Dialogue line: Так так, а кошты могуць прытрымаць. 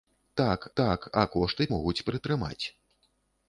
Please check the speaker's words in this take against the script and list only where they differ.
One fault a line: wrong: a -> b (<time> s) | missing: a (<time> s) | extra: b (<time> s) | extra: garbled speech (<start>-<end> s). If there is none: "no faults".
no faults